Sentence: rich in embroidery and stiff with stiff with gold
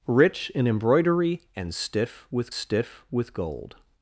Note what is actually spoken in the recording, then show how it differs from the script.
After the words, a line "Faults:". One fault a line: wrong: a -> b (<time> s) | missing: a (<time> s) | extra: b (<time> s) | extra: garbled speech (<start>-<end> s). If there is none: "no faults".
rich in embroidery and stiff with stiff with gold
Faults:
no faults